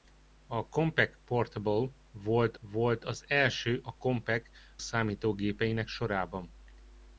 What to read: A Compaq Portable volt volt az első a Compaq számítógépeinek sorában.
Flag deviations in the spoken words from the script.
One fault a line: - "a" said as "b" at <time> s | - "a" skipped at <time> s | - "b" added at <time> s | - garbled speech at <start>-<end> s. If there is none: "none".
none